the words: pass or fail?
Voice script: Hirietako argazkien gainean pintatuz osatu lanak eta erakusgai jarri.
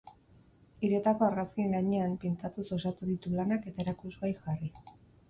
fail